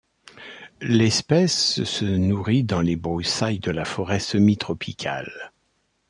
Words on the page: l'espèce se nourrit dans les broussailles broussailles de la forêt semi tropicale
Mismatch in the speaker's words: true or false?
true